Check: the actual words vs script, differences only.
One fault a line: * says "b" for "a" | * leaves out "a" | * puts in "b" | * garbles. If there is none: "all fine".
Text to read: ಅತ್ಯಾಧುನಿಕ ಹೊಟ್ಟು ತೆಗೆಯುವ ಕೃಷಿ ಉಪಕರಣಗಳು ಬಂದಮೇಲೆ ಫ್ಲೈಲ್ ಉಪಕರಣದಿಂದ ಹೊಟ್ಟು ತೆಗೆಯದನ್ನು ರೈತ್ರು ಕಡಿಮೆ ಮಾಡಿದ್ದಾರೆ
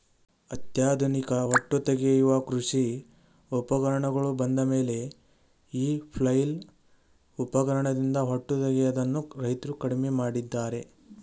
* puts in "ಈ"